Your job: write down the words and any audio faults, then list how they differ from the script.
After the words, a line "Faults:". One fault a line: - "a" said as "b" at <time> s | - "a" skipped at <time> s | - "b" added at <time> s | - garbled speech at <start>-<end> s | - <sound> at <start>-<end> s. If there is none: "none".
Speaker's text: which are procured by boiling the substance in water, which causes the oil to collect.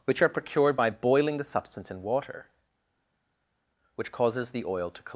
which are procured by boiling the substance in water, which causes the oil to collect.
Faults:
none